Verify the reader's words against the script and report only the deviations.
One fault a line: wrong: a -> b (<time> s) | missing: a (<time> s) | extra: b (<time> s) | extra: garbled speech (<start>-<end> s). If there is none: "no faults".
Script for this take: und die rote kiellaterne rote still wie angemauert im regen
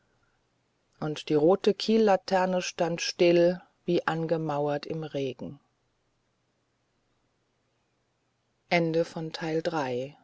wrong: rote -> stand (2.6 s)